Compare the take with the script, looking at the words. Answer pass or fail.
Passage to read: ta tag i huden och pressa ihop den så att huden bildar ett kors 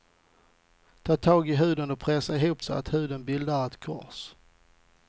fail